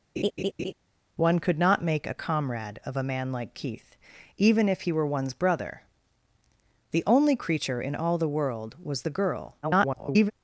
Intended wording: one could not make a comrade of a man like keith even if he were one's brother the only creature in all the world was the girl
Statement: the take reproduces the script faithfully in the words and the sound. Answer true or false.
false